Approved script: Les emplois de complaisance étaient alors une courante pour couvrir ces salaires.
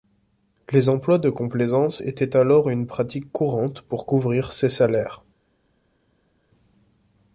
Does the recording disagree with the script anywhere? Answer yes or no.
yes